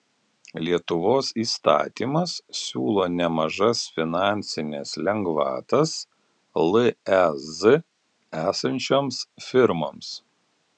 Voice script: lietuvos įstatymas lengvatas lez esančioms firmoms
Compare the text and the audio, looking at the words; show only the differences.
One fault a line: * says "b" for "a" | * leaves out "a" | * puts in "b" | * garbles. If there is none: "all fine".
* puts in "siūlo nemažas finansines"